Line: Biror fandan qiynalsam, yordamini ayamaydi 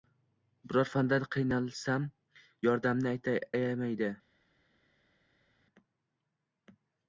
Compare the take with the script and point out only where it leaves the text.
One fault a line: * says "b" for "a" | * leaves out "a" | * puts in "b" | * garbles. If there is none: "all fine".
all fine